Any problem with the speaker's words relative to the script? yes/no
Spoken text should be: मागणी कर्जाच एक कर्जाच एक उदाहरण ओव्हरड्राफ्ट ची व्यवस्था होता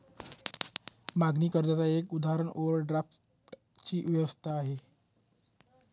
yes